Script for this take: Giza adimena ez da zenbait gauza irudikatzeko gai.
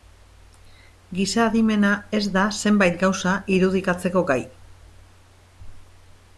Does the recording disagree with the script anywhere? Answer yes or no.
no